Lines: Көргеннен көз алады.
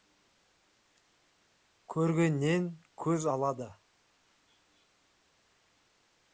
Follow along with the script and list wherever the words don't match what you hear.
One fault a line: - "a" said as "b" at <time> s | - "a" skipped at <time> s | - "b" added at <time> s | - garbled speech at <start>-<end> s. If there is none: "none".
none